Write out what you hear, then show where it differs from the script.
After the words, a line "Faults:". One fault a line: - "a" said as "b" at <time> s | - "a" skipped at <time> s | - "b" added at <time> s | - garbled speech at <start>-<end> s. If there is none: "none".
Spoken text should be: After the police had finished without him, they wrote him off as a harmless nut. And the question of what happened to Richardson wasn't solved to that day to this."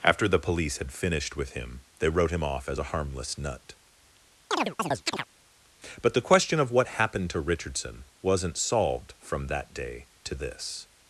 After the police had finished with him, they wrote him off as a harmless nut. But the question of what happened to Richardson wasn't solved from that day to this."
Faults:
- "without" said as "with" at 1.4 s
- "And" said as "But" at 6.0 s
- "to" said as "from" at 9.2 s